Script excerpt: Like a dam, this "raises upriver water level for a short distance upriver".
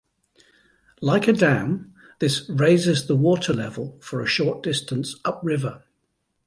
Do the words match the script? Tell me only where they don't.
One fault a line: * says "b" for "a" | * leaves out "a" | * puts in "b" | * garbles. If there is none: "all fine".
* says "the" for "upriver"